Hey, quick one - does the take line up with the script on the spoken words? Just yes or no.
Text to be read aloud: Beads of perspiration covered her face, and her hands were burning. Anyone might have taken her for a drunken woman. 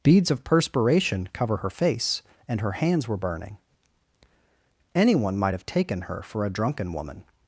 no